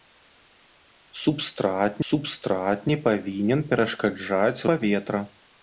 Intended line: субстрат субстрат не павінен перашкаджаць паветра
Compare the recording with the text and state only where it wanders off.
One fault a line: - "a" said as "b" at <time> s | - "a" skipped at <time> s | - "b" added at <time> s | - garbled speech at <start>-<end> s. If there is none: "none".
none